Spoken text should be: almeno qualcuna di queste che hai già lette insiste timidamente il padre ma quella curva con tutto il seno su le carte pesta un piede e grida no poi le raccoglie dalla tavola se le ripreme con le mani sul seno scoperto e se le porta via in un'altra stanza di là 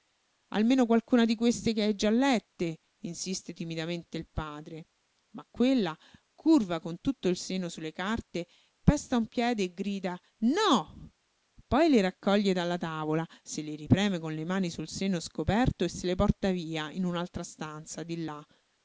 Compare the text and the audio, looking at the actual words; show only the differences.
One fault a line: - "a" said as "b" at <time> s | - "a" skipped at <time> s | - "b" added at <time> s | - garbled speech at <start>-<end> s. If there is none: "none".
none